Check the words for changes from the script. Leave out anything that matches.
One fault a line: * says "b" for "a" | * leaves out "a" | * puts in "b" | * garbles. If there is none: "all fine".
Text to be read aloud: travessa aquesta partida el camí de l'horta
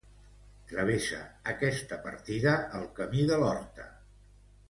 all fine